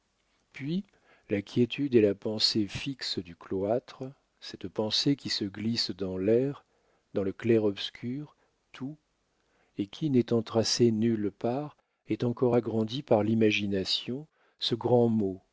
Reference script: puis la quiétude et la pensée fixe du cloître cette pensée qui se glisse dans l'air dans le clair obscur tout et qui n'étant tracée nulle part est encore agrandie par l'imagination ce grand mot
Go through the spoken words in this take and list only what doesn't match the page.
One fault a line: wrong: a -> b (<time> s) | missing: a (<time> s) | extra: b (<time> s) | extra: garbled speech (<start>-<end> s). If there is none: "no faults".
no faults